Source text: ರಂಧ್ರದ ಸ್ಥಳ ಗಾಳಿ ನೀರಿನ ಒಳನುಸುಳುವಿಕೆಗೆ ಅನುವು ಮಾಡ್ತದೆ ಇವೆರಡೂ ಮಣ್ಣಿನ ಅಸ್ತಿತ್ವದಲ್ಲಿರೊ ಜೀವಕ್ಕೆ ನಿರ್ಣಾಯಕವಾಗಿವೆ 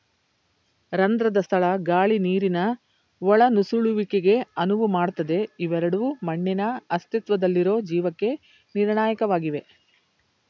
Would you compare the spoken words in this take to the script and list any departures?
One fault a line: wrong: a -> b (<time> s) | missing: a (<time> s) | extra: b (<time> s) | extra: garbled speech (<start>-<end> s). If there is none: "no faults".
no faults